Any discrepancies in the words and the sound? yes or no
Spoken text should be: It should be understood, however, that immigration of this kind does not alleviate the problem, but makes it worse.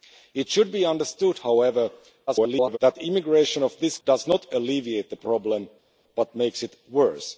yes